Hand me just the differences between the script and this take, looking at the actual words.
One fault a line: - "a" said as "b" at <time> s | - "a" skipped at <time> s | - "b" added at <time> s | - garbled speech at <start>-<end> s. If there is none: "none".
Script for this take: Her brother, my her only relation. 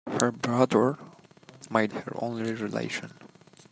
none